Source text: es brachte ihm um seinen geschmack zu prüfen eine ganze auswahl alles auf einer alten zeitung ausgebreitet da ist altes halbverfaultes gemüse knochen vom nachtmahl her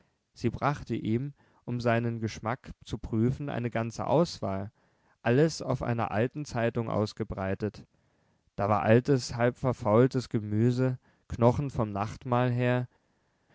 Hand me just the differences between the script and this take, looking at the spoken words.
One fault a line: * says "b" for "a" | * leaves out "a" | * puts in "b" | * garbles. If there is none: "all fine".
* says "sie" for "es"
* says "war" for "ist"